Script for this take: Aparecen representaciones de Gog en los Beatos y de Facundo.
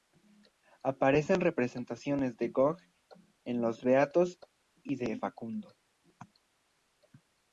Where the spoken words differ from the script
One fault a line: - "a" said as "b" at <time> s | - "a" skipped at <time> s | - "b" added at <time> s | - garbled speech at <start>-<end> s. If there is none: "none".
none